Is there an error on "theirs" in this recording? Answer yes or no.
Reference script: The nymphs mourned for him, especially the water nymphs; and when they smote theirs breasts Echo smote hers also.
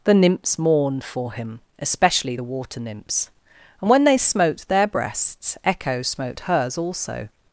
yes